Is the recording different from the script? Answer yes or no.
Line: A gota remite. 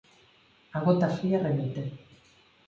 yes